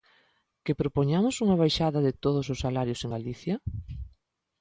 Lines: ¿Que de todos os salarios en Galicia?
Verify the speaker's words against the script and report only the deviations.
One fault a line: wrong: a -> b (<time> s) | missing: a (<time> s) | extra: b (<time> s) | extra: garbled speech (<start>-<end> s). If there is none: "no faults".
extra: propoñamos unha baixada (0.8 s)